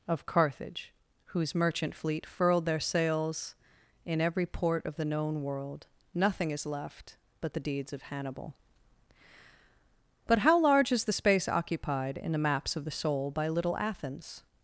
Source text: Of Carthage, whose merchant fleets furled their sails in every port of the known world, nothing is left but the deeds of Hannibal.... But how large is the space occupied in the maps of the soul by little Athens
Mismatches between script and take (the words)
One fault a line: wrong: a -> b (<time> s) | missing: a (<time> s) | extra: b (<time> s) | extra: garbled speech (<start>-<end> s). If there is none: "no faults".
wrong: fleets -> fleet (1.9 s)